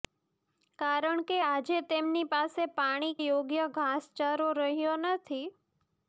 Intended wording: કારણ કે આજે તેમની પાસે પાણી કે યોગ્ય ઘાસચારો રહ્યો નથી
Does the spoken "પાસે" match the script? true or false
true